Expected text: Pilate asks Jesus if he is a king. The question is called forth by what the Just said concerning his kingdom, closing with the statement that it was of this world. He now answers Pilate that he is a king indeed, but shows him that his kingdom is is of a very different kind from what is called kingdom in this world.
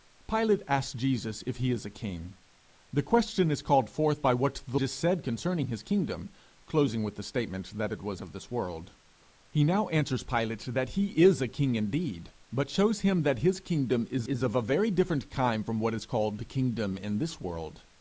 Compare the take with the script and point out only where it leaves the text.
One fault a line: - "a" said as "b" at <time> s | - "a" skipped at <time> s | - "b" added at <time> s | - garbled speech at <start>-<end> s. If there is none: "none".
none